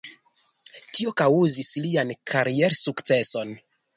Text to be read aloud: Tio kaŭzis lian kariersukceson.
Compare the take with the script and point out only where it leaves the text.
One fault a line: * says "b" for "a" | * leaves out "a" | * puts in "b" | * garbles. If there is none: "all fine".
all fine